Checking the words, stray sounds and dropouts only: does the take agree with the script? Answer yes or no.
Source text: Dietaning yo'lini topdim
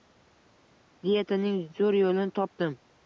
no